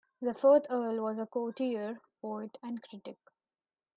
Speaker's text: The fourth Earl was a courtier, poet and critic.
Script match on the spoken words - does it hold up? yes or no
yes